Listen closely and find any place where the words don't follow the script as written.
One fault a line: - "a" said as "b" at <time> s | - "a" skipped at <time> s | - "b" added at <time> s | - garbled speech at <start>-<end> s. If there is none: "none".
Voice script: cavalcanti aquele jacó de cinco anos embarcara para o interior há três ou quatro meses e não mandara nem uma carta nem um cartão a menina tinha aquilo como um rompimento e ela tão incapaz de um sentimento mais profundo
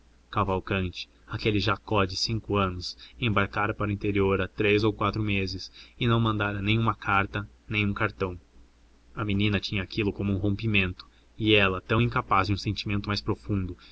none